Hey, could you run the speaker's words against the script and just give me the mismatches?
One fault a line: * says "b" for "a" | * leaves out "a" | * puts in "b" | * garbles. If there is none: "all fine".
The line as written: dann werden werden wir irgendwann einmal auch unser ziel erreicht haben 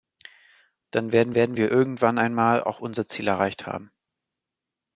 all fine